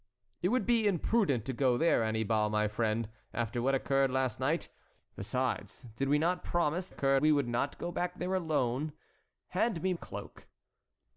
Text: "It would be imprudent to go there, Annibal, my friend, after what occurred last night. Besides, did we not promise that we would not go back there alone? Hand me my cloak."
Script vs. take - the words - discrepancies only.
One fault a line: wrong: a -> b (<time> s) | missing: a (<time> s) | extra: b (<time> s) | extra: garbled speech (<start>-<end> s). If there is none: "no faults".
wrong: that -> occurred (6.9 s)
missing: my (9.9 s)